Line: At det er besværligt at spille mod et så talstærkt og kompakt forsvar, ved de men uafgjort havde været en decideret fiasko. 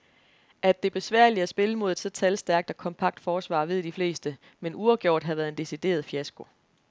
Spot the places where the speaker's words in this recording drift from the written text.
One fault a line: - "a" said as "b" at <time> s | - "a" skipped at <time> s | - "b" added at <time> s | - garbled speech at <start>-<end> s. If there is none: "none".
- "fleste" added at 3.9 s